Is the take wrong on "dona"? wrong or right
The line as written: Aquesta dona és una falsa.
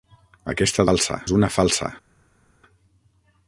wrong